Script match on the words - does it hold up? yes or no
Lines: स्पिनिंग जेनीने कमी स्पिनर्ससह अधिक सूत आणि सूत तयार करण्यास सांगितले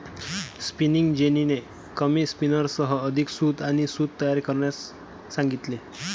yes